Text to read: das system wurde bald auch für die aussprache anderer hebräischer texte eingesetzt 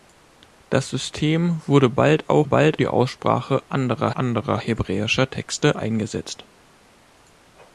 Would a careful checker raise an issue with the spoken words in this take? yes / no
yes